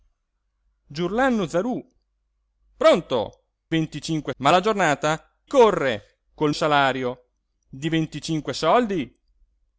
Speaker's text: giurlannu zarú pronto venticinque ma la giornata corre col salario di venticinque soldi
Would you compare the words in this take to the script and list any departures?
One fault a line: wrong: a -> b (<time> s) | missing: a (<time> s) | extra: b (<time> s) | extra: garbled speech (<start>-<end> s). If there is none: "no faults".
no faults